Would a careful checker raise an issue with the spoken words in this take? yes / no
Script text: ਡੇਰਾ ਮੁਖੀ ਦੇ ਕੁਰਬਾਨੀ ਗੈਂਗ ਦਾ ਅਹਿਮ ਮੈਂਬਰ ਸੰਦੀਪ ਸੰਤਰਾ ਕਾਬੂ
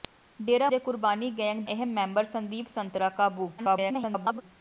yes